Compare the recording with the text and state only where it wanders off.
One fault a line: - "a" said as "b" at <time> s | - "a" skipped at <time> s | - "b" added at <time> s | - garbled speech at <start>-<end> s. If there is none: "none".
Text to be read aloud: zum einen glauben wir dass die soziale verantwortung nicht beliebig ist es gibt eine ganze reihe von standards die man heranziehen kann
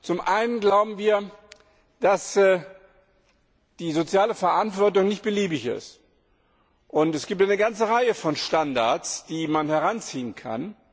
none